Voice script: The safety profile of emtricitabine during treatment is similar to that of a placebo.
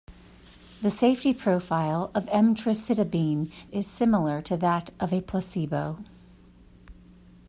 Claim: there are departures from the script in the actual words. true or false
true